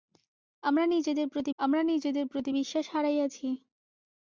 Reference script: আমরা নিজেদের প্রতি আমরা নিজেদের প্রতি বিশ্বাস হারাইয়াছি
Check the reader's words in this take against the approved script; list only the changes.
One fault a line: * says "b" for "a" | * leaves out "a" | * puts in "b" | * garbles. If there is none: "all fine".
all fine